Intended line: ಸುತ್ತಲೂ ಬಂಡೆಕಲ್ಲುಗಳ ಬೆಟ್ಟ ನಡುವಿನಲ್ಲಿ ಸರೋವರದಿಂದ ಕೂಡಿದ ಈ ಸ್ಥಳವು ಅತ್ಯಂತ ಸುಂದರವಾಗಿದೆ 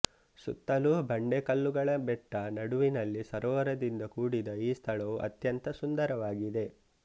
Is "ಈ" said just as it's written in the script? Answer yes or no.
yes